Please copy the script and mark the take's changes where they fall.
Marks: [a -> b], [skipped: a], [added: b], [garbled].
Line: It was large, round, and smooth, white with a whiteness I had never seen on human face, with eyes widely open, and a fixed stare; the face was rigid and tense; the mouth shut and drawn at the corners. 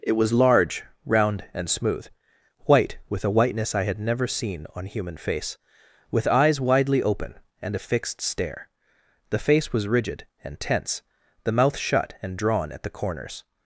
It was large, round, and smooth, white with a whiteness I had never seen on human face, with eyes widely open, and a fixed stare; the face was rigid and tense; the mouth shut and drawn at the corners.